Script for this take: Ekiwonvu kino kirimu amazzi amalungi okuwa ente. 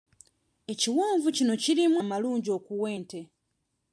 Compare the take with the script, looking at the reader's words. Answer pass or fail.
fail